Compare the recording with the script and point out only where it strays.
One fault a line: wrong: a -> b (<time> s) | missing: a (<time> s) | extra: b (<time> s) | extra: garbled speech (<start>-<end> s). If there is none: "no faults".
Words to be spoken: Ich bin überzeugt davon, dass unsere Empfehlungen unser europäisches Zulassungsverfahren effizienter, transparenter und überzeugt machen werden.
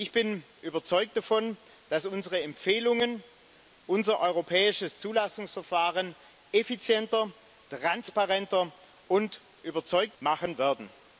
no faults